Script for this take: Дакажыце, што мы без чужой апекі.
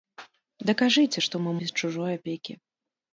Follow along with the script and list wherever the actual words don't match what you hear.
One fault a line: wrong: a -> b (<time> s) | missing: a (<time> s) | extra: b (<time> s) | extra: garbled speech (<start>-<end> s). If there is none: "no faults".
no faults